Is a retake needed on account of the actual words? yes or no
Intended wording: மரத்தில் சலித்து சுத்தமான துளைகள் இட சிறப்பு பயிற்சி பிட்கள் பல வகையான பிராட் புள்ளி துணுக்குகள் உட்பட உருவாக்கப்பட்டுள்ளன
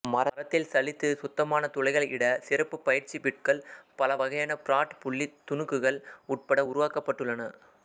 no